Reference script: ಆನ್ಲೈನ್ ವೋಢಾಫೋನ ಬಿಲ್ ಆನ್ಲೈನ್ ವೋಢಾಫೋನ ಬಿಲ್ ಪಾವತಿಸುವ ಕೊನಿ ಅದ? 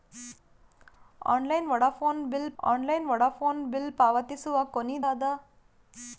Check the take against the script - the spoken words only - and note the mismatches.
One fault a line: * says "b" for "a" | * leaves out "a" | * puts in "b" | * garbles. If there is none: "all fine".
all fine